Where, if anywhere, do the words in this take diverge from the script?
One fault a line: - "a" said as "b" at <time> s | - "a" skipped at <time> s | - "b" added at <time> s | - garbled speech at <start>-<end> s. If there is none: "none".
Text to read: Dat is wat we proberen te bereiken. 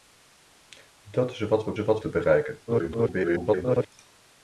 - "proberen" said as "wat" at 1.8 s
- garbled speech at 2.7-3.9 s